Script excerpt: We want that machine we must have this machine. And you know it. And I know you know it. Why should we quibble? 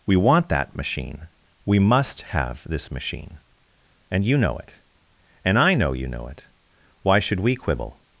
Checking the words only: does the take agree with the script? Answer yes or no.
yes